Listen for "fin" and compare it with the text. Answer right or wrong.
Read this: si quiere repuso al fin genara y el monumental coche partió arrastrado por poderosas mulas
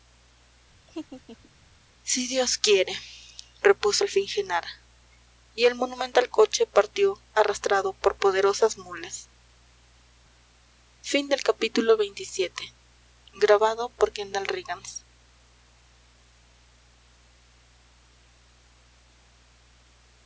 right